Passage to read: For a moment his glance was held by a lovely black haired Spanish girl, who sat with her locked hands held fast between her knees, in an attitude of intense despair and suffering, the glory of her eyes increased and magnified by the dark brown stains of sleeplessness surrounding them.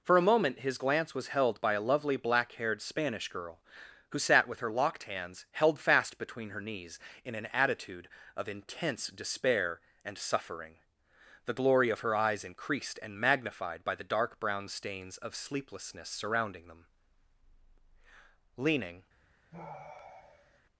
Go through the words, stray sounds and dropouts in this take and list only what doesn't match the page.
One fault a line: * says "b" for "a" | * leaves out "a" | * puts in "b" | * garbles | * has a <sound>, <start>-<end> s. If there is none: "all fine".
* puts in "Leaning"
* has a sigh, 19.5-20.6 s